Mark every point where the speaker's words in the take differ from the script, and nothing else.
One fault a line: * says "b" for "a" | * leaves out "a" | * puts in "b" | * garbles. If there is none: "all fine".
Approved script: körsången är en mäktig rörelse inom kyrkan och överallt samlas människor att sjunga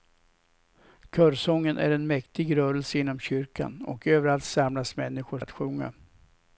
all fine